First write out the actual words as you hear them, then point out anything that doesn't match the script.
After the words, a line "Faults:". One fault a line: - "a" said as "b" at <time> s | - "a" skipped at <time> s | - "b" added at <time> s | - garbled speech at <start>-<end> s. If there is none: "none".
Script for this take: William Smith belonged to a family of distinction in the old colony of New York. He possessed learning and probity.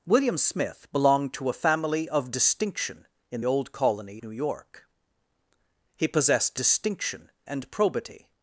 William Smith belonged to a family of distinction in old colony New York. He possessed distinction and probity.
Faults:
- "the" skipped at 3.4 s
- "of" skipped at 4.2 s
- "learning" said as "distinction" at 6.5 s